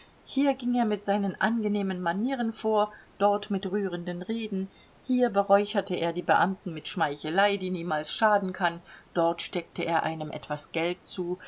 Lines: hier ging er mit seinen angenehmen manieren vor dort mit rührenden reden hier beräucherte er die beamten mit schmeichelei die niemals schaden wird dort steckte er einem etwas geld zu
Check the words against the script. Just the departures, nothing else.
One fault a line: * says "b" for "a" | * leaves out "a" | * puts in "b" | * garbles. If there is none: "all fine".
* says "kann" for "wird"